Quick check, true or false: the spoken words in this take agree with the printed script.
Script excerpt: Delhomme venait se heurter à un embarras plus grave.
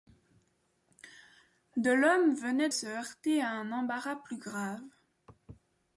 true